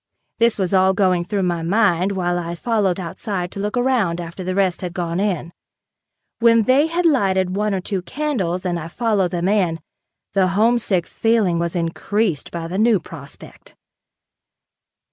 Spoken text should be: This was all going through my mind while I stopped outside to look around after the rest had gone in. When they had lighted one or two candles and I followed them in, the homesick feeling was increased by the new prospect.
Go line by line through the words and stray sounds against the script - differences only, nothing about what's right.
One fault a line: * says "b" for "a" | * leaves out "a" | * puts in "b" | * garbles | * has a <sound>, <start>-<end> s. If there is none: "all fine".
* says "followed" for "stopped"